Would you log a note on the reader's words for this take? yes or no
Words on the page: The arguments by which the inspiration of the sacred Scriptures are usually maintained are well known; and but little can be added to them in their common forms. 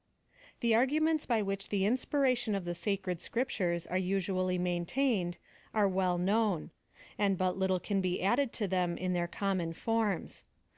no